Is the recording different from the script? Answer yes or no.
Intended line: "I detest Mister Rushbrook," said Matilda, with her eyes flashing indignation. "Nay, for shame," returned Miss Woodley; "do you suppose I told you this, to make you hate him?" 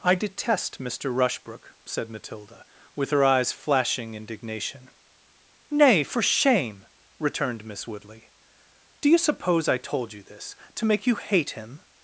no